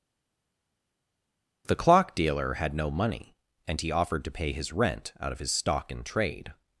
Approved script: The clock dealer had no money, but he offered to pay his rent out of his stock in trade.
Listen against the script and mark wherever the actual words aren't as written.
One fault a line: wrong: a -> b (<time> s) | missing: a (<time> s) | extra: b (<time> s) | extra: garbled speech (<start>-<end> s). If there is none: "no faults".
wrong: but -> and (3.7 s)